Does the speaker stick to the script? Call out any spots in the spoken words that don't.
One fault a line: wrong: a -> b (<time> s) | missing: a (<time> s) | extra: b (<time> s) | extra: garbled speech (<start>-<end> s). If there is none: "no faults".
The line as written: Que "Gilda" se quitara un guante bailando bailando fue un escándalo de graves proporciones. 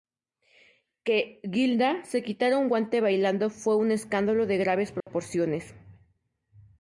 missing: bailando (3.5 s)